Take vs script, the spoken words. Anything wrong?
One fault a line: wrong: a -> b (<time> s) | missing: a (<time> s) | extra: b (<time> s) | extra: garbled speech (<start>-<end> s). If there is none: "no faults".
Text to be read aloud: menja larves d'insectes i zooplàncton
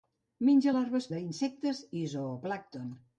no faults